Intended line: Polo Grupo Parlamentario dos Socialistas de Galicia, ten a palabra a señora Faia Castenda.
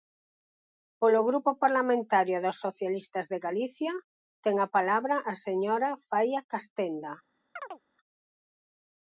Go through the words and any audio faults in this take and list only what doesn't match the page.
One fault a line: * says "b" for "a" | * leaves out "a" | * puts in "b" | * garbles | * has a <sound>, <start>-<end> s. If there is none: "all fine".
* has a chirp, 7.6-7.8 s